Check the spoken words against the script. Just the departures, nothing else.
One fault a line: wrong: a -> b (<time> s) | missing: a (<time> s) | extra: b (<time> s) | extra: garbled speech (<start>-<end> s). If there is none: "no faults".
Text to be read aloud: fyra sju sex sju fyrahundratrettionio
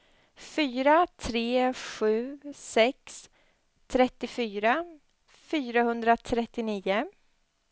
extra: tre (1.2 s)
wrong: sju -> trettiofyra (3.9 s)